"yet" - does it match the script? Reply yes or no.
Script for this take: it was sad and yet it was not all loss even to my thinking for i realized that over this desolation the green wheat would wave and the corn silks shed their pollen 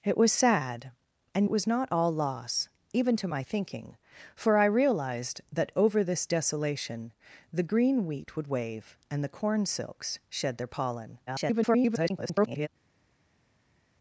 no